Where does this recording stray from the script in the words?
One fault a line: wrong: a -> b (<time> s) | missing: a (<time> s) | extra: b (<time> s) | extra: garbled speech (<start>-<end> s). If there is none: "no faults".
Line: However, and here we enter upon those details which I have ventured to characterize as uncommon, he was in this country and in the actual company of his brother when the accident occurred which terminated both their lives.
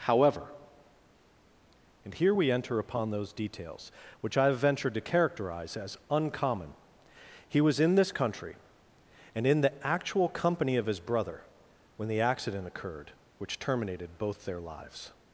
no faults